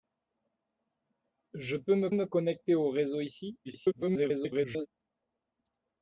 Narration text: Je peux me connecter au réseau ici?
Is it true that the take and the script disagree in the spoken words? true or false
true